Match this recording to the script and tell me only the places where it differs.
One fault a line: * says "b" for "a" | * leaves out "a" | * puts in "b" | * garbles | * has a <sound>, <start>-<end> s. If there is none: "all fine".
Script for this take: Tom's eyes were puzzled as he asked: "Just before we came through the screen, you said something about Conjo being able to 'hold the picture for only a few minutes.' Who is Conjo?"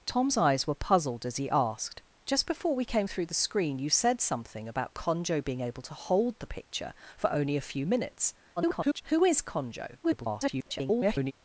* garbles
* garbles